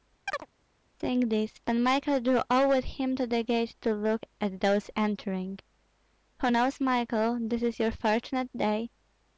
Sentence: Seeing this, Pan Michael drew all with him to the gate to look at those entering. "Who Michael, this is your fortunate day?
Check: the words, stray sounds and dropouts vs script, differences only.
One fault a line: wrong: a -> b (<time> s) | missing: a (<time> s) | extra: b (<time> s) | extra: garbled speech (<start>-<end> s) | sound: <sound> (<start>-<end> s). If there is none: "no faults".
sound: chirp (0.3-0.5 s)
extra: knows (6.5 s)